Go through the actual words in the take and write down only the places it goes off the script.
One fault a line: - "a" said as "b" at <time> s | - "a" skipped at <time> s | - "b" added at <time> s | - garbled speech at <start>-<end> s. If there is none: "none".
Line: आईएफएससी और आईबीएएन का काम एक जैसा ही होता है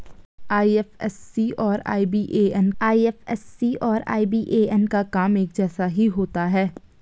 - "आईएफएससी और आईबीएएन" added at 2.8 s